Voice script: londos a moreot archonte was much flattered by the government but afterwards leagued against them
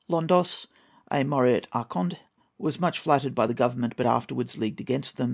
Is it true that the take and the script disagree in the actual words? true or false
false